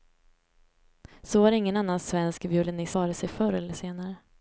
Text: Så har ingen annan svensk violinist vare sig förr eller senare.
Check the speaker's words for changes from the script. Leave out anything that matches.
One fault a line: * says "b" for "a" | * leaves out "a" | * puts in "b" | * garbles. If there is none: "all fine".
all fine